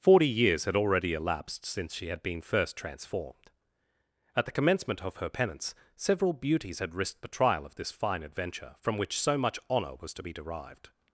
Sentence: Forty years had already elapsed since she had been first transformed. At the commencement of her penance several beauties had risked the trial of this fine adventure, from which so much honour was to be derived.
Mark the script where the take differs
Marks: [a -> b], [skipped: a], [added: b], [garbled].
Forty years had already elapsed since she had been first transformed. At the commencement of her penance several beauties had risked the trial of this fine adventure, from which so much honour was to be derived.